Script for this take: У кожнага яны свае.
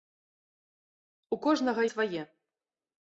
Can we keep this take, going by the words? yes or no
no